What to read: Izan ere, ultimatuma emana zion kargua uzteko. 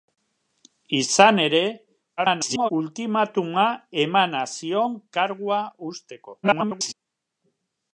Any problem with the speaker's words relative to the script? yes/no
yes